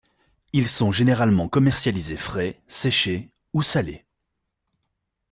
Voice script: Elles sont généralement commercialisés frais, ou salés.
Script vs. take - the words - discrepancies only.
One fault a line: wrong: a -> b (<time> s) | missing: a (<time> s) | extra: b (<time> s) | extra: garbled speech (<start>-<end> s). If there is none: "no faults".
wrong: Elles -> Ils (0.5 s)
extra: séchés (2.7 s)